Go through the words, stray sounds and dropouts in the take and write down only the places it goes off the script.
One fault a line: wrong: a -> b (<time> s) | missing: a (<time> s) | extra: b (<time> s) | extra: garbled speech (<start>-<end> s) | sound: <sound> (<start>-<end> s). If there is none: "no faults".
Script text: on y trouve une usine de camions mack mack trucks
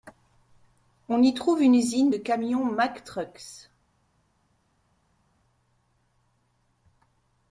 missing: mack (3.0 s)